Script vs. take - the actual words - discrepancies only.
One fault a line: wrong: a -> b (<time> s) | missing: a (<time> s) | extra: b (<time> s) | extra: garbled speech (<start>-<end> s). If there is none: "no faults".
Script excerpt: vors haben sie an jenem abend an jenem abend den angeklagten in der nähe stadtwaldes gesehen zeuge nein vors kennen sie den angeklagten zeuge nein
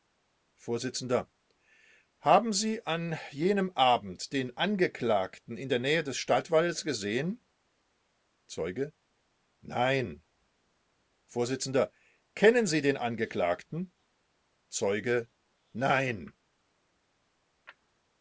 missing: an jenem abend (4.3 s)
extra: des (6.0 s)